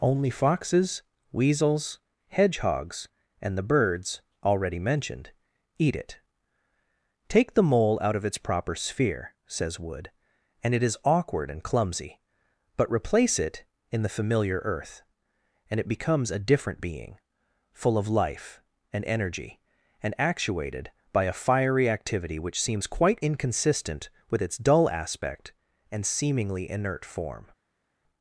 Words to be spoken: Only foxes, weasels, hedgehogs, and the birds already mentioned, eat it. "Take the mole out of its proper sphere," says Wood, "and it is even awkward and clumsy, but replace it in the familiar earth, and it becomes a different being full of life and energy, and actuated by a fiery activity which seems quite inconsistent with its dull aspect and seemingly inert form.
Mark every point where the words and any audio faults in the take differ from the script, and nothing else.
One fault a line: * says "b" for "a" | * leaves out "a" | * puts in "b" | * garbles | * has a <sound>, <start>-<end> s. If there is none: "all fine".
* leaves out "even"